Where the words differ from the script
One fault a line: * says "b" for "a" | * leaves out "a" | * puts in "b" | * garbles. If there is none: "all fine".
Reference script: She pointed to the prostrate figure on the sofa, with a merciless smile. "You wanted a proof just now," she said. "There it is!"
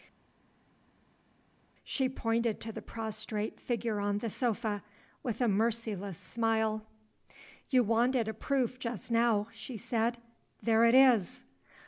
all fine